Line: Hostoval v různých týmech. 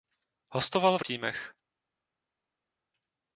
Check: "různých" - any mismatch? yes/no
yes